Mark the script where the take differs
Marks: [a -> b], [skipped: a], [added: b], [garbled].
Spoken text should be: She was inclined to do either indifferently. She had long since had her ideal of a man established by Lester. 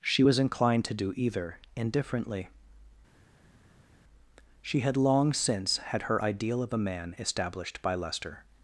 She was inclined to do either indifferently. She had long since had her ideal of a man established by Lester.